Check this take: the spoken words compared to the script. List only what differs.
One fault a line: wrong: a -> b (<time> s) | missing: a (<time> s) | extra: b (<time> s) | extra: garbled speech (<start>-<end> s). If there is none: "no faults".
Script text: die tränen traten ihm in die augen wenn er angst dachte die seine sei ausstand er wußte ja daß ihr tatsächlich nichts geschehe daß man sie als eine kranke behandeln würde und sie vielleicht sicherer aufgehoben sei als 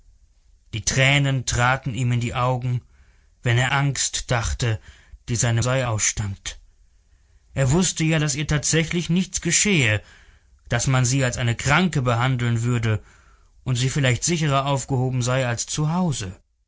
no faults